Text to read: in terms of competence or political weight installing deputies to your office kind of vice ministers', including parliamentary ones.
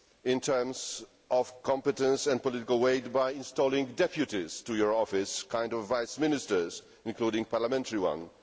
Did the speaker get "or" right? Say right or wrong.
wrong